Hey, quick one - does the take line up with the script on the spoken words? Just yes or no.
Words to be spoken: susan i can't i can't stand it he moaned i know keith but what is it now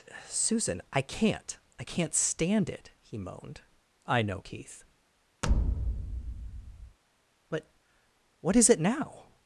yes